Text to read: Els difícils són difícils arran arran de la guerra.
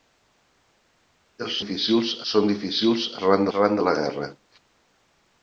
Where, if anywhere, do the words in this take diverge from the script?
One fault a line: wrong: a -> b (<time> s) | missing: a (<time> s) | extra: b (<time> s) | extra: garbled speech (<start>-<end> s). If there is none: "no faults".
no faults